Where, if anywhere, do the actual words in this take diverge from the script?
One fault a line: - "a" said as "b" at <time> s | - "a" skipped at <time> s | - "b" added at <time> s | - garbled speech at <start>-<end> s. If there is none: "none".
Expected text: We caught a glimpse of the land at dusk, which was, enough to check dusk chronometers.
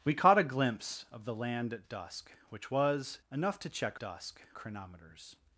none